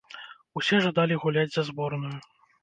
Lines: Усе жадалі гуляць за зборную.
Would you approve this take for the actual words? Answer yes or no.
yes